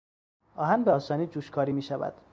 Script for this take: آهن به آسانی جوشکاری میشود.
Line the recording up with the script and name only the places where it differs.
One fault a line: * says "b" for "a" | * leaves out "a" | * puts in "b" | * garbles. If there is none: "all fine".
all fine